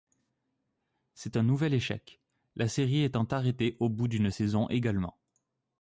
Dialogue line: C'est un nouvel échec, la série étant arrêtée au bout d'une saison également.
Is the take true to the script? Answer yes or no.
yes